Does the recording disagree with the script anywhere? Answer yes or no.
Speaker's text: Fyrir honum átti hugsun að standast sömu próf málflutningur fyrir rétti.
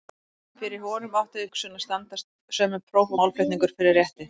no